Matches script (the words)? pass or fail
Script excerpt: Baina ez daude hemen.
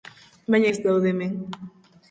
pass